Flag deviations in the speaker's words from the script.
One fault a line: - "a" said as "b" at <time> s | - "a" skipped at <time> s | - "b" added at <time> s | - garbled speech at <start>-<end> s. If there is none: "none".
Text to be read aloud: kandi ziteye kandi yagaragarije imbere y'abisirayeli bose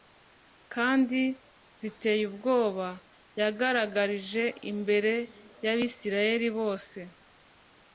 - "kandi" said as "ubwoba" at 2.3 s